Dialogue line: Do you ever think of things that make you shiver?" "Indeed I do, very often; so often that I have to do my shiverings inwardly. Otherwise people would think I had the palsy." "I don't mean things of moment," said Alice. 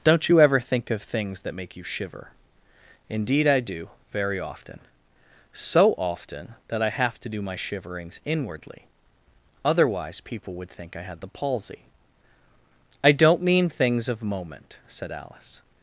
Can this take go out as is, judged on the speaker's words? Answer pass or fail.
fail